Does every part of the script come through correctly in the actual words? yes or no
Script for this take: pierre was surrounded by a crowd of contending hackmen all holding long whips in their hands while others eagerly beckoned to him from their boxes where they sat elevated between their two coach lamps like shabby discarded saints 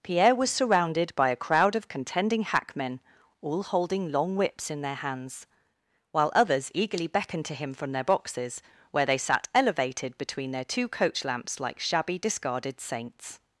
yes